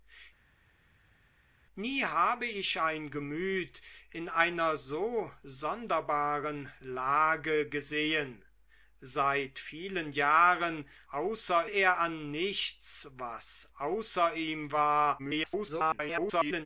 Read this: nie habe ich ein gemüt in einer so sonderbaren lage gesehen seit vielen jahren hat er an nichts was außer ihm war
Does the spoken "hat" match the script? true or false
false